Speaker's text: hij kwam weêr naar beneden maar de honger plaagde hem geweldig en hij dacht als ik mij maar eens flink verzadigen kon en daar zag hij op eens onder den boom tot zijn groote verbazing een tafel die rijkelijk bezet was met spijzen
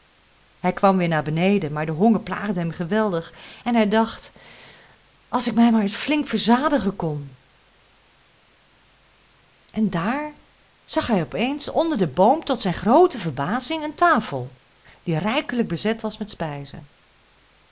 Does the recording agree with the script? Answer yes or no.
yes